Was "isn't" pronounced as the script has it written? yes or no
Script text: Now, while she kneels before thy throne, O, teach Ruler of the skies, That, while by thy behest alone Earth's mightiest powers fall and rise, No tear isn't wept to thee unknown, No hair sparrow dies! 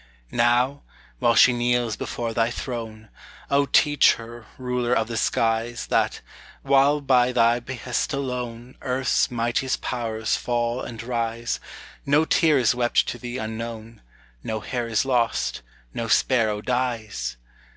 no